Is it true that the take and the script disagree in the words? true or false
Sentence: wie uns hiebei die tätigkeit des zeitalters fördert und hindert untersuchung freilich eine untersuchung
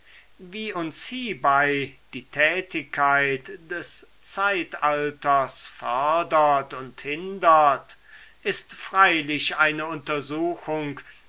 true